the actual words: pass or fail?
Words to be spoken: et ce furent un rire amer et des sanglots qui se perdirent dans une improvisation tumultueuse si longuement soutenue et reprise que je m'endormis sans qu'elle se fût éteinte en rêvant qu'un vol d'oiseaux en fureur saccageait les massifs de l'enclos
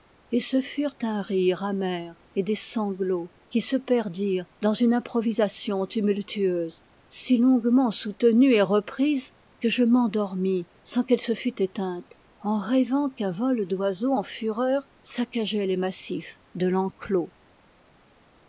pass